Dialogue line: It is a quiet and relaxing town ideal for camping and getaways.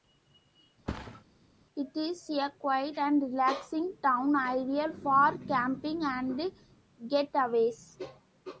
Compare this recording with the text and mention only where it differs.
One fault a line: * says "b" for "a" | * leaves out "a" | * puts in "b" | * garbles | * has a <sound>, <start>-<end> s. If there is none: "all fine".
* has a thud, 0.9-1.2 s